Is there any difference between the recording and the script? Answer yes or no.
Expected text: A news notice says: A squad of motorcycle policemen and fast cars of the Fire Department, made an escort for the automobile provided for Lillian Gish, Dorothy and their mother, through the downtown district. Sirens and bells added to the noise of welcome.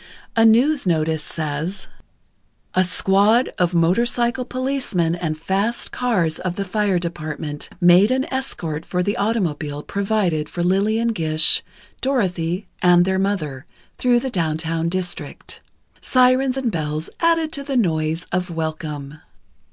no